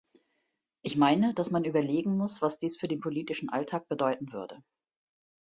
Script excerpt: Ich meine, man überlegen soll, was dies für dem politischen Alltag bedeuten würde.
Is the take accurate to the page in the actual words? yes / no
no